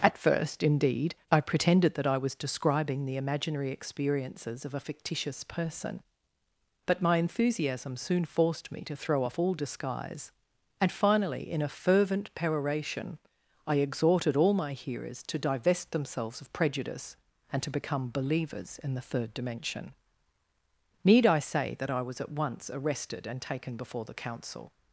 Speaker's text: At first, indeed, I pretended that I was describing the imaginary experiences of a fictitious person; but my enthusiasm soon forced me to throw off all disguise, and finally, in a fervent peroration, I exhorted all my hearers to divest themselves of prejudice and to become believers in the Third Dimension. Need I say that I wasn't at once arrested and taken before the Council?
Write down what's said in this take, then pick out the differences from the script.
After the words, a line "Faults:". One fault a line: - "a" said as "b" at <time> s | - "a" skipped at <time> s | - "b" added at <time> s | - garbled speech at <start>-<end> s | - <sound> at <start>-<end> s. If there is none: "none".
At first, indeed, I pretended that I was describing the imaginary experiences of a fictitious person; but my enthusiasm soon forced me to throw off all disguise, and finally, in a fervent peroration, I exhorted all my hearers to divest themselves of prejudice and to become believers in the Third Dimension. Need I say that I was at once arrested and taken before the Council?
Faults:
- "wasn't" said as "was" at 22.0 s